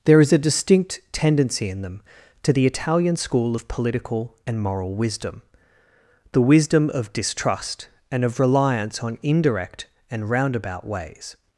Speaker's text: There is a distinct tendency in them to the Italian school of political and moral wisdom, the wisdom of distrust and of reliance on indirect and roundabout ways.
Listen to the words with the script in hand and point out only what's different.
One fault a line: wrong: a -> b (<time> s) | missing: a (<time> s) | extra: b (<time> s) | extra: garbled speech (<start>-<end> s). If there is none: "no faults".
no faults